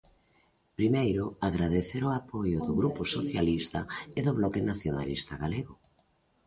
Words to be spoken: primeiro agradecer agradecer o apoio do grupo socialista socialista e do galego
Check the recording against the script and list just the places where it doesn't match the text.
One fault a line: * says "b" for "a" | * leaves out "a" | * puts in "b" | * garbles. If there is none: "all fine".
* leaves out "agradecer"
* leaves out "socialista"
* puts in "bloque nacionalista"